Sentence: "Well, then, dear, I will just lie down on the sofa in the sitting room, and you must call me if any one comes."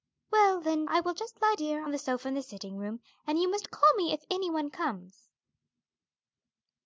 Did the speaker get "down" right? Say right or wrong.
wrong